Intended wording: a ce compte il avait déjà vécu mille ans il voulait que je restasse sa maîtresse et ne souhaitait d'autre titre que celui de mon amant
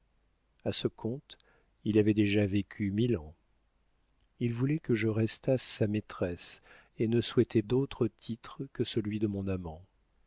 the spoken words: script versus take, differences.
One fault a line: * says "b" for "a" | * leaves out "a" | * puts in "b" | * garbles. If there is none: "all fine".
all fine